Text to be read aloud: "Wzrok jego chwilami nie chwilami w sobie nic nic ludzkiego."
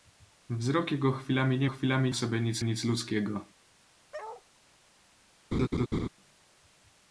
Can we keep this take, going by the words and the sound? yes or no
no